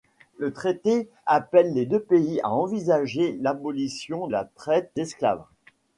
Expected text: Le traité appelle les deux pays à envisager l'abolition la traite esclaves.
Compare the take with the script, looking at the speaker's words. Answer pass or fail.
pass